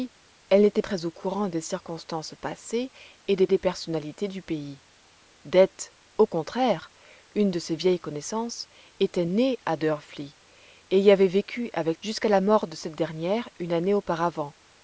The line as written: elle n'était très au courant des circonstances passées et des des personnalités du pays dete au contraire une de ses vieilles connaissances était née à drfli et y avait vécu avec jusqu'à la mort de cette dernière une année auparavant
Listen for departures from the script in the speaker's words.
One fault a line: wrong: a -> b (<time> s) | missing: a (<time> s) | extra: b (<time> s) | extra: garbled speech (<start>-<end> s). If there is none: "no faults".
no faults